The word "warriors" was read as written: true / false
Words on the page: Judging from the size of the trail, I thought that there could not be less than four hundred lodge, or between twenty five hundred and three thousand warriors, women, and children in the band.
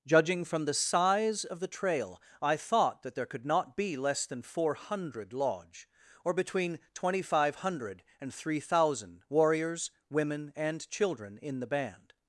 true